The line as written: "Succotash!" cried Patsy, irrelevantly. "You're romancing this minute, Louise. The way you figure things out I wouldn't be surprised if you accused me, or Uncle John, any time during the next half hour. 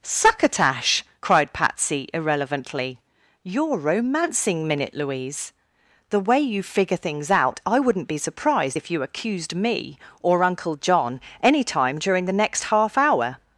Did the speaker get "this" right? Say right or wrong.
wrong